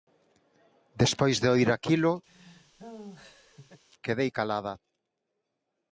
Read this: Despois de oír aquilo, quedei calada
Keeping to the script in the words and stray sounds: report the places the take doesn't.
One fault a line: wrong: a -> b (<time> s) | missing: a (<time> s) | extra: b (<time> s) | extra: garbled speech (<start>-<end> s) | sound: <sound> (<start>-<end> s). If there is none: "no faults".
sound: laugh (2.3-3.8 s)